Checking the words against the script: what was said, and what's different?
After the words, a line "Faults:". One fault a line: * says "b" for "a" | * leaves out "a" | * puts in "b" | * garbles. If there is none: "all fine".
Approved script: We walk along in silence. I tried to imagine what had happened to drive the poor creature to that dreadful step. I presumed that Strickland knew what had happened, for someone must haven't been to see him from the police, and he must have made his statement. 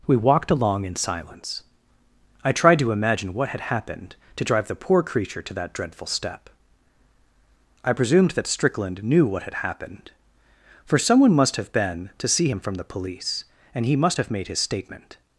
We walked along in silence. I tried to imagine what had happened to drive the poor creature to that dreadful step. I presumed that Strickland knew what had happened, for someone must have been to see him from the police, and he must have made his statement.
Faults:
* says "walked" for "walk"
* says "have" for "haven't"